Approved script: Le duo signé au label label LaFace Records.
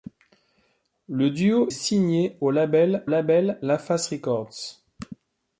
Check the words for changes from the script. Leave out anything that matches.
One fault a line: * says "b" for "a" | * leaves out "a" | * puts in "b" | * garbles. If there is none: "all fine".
all fine